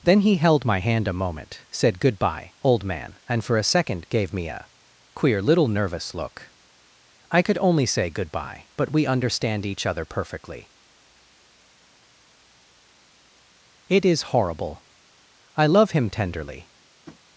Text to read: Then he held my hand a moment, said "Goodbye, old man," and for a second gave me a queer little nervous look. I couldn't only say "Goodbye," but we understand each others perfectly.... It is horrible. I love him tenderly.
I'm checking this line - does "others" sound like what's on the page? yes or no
no